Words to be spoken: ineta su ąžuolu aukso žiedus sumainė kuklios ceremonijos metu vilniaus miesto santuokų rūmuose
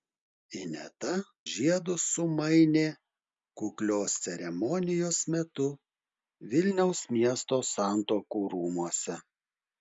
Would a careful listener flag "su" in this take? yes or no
yes